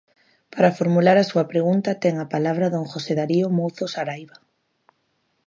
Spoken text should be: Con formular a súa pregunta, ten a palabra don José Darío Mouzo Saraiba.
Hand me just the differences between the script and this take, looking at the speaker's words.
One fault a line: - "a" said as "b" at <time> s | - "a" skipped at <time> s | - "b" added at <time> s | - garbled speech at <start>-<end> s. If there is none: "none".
- "Con" said as "Para" at 0.5 s